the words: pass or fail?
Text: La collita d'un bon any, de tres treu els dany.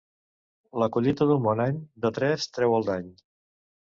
fail